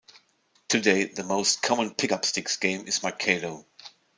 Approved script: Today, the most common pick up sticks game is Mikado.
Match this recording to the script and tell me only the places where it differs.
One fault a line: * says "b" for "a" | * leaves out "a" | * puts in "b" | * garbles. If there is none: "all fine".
all fine